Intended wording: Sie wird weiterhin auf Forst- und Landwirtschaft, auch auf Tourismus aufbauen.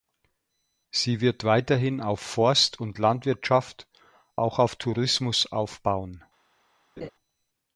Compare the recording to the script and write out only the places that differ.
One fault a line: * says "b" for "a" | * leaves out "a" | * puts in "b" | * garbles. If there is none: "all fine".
all fine